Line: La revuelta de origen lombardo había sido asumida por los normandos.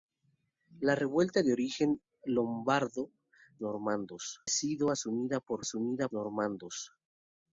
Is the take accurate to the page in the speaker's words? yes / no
no